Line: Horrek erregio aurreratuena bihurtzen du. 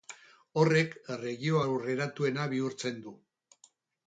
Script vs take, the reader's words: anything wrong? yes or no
no